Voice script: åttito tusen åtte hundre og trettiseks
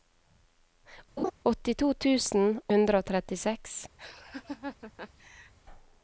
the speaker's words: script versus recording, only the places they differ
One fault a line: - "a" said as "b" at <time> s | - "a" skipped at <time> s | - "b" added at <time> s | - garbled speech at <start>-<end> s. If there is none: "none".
- "åtte" skipped at 2.6 s